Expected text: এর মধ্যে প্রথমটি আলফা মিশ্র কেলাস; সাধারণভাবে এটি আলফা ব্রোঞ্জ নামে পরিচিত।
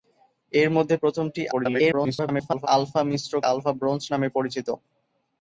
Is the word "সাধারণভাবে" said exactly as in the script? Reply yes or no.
no